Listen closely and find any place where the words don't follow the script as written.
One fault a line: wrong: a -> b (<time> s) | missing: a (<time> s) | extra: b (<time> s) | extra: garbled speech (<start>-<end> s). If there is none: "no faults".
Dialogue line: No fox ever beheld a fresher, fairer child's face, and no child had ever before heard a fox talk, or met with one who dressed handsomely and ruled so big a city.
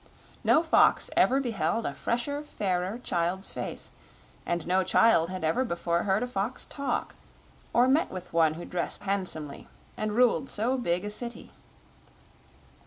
no faults